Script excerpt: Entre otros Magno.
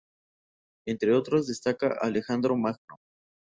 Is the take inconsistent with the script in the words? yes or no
yes